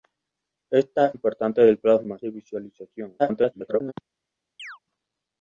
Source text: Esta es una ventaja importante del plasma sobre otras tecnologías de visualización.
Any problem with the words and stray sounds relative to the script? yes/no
yes